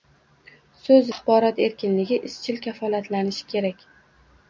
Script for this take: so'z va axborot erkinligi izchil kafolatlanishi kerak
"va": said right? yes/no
no